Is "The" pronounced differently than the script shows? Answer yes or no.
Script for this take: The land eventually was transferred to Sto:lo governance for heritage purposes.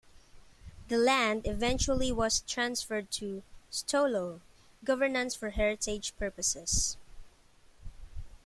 no